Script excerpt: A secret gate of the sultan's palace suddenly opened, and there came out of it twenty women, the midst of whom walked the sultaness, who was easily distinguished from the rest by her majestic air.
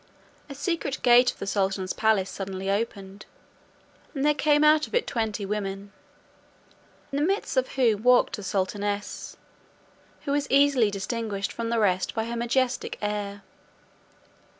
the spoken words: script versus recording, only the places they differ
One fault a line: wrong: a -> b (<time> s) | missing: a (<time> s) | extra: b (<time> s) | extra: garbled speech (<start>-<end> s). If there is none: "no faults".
no faults